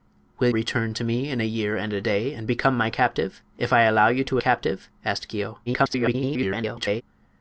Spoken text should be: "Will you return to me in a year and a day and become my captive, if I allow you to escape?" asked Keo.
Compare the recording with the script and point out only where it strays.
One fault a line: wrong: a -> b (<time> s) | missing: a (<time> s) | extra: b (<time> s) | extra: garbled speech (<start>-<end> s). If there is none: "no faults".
missing: you (0.5 s)
wrong: escape -> captive (4.4 s)
extra: garbled speech (5.7-7.0 s)